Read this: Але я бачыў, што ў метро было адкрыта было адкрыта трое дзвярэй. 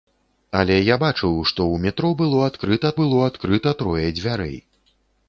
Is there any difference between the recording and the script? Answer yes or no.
no